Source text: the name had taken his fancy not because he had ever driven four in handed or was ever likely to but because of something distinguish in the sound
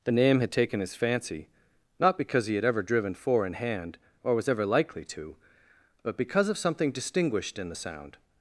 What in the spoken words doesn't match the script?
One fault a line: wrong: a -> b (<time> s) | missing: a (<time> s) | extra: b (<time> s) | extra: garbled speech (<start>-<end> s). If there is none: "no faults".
wrong: handed -> hand (3.5 s)
wrong: distinguish -> distinguished (6.9 s)